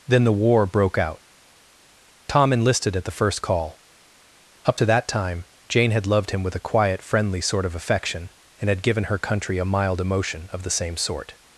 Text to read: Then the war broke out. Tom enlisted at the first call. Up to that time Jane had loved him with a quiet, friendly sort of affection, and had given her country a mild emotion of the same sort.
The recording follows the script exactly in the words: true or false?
true